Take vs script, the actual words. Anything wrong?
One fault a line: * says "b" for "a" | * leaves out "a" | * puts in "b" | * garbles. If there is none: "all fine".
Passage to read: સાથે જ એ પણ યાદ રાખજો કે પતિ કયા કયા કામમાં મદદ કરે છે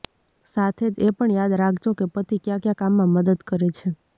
all fine